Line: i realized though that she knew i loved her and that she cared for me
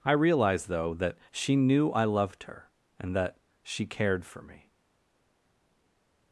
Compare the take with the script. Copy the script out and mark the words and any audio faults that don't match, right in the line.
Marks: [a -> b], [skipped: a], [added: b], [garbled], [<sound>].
i realized though that she knew i loved her and that she cared for me